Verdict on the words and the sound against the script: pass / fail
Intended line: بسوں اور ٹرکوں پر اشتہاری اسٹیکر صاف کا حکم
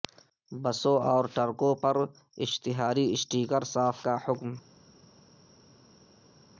pass